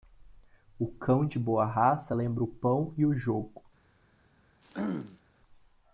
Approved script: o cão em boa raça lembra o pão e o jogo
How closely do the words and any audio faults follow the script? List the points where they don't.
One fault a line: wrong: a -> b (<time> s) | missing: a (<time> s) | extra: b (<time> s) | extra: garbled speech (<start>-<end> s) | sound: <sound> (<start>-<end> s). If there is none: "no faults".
wrong: em -> de (1.3 s)
sound: throat clearing (4.6-5.2 s)